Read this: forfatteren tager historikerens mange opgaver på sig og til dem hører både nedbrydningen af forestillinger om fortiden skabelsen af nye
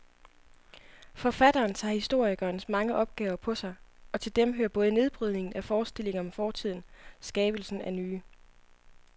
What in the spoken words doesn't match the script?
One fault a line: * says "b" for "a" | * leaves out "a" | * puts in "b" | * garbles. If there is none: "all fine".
all fine